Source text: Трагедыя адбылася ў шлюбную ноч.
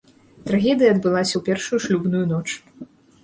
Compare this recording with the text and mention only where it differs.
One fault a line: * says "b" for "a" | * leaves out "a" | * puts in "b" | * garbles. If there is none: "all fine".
* puts in "першую"